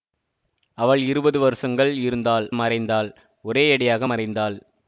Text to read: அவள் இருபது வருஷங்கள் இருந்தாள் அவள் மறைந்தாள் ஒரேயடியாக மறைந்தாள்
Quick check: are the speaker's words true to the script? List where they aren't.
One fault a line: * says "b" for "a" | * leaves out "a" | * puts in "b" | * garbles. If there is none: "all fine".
* leaves out "அவள்"